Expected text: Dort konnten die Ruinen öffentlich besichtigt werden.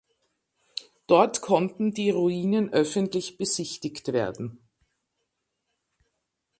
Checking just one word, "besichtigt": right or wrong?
right